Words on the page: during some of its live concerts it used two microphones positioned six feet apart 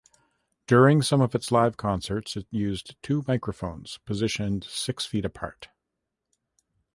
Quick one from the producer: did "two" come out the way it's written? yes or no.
yes